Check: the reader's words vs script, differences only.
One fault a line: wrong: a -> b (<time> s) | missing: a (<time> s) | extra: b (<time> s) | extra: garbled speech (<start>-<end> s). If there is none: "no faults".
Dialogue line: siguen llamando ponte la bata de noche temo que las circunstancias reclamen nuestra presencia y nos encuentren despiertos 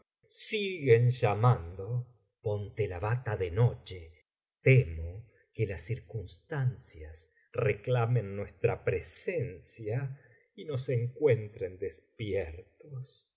no faults